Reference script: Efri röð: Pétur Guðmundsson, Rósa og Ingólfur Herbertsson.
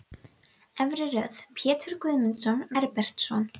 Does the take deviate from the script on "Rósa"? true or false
true